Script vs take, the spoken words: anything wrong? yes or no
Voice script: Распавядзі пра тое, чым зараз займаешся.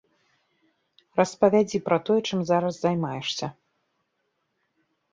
no